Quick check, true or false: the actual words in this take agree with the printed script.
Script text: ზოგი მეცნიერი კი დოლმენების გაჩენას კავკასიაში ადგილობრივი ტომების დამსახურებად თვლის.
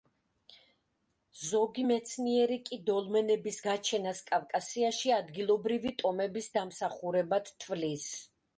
true